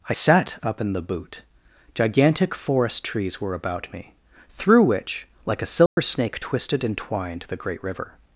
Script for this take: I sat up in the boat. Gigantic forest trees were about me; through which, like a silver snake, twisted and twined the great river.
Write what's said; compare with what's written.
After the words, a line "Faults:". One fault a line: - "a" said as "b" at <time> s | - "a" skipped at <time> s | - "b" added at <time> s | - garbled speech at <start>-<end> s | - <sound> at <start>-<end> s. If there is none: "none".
I sat up in the boot. Gigantic forest trees were about me; through which, like a silver snake, twisted and twined the great river.
Faults:
- "boat" said as "boot" at 1.0 s
- dropout at 5.9-6.0 s